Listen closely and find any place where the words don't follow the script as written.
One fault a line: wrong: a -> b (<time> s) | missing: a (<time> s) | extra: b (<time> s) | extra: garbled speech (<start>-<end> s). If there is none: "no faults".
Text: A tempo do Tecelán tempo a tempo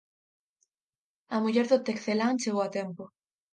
wrong: tempo -> muller (1.4 s)
wrong: tempo -> chegou (2.4 s)